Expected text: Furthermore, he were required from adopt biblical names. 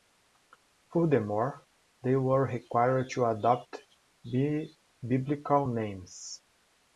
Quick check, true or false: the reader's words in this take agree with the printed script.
false